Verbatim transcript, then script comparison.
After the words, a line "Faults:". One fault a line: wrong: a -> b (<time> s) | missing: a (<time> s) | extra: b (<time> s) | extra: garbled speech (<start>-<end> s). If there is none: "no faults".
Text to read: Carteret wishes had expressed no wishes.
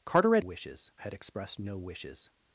Carteret wishes had expressed no wishes.
Faults:
no faults